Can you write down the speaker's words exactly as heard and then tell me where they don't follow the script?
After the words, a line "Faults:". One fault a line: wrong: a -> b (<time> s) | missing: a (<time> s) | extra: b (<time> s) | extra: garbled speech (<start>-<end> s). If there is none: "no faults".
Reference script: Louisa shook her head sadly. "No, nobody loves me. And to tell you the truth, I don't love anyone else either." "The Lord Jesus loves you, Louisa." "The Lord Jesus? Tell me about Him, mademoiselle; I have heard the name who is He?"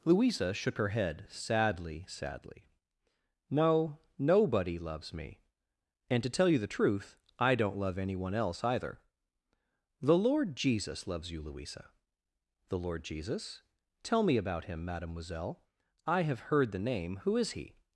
Louisa shook her head sadly sadly. "No, nobody loves me. And to tell you the truth, I don't love anyone else either." "The Lord Jesus loves you, Louisa." "The Lord Jesus? Tell me about Him, mademoiselle; I have heard the name who is He?"
Faults:
extra: sadly (2.1 s)